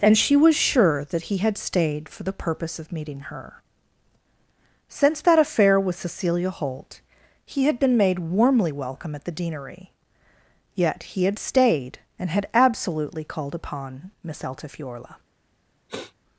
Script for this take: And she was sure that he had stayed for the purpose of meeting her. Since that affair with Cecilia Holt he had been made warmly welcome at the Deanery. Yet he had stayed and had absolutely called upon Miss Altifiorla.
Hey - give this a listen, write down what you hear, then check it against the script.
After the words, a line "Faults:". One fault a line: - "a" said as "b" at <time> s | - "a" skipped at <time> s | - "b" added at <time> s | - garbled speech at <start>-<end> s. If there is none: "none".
And she was sure that he had stayed for the purpose of meeting her. Since that affair with Cecilia Holt he had been made warmly welcome at the Deanery. Yet he had stayed and had absolutely called upon Miss Altifiorla.
Faults:
none